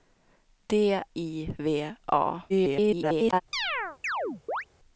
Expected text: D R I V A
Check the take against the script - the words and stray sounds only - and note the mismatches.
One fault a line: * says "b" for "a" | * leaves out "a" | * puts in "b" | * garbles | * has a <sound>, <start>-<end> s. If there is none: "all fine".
* leaves out "R"
* garbles
* has a chirp, 3.5-4.7 s